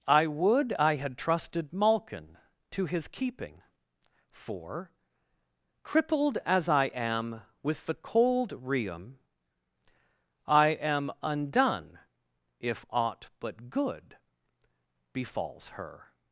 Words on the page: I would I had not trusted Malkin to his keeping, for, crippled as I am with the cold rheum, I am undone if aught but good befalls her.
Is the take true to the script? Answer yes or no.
no